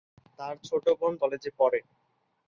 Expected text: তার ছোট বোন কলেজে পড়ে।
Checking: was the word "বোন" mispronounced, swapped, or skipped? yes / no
no